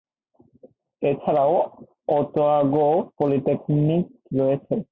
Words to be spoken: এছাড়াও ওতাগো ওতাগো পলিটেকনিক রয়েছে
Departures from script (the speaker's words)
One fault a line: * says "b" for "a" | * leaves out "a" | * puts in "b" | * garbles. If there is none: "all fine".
* leaves out "ওতাগো"